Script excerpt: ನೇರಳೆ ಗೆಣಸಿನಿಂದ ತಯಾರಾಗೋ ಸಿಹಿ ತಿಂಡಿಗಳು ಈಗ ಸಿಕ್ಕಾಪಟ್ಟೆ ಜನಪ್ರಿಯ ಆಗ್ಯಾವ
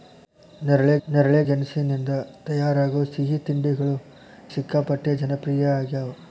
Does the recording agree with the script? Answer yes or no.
no